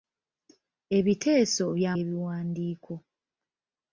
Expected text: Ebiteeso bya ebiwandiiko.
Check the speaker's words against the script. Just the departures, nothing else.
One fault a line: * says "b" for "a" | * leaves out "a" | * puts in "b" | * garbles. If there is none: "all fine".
all fine